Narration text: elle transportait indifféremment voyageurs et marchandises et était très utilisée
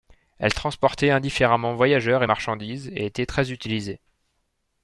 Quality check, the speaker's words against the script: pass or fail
pass